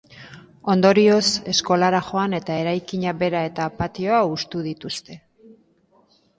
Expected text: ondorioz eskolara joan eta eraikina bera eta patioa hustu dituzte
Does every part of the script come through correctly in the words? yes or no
yes